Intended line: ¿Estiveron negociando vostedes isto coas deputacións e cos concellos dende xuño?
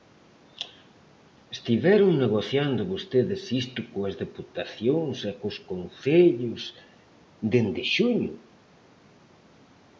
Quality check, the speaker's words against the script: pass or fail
pass